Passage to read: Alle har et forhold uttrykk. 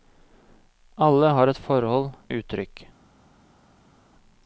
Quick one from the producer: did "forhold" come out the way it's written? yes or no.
yes